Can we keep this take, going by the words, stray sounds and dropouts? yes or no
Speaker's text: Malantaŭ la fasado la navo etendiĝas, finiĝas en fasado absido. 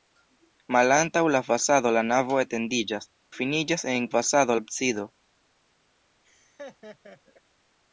no